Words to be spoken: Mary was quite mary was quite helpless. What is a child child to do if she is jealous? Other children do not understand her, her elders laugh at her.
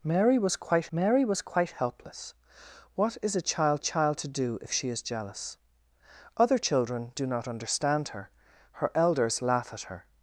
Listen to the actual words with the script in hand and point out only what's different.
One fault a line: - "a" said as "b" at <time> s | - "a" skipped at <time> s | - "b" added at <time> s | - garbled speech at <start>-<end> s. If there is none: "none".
none